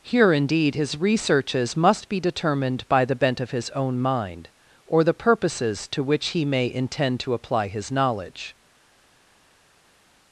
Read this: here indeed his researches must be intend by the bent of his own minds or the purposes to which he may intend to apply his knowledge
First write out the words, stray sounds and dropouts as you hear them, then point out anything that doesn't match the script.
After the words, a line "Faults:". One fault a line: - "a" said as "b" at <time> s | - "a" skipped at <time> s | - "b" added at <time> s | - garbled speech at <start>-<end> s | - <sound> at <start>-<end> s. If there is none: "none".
here indeed his researches must be determined by the bent of his own mind or the purposes to which he may intend to apply his knowledge
Faults:
- "intend" said as "determined" at 2.2 s
- "minds" said as "mind" at 4.0 s